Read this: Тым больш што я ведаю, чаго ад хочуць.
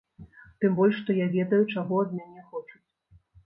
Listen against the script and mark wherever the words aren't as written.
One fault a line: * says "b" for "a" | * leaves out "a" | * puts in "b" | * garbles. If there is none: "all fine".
* puts in "мяне"